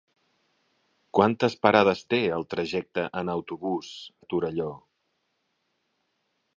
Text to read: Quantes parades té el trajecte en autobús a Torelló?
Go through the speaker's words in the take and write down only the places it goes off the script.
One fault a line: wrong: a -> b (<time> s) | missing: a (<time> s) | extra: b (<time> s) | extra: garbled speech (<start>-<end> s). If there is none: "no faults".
no faults